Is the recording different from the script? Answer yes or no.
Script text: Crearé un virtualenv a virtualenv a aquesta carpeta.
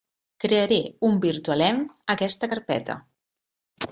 yes